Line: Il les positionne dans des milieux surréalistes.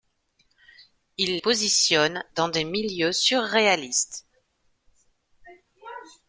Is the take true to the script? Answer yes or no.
no